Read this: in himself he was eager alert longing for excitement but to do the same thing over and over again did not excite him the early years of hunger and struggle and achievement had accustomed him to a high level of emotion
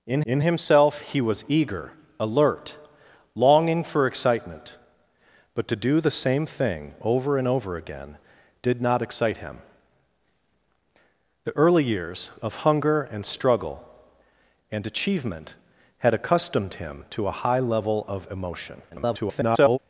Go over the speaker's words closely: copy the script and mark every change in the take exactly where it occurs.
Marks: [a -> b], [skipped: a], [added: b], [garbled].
in [added: in] himself he was eager alert longing for excitement but to do the same thing over and over again did not excite him the early years of hunger and struggle and achievement had accustomed him to a high level of emotion [garbled]